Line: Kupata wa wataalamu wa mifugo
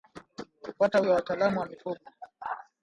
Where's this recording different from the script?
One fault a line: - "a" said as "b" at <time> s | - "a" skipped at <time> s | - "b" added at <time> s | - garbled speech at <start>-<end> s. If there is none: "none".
none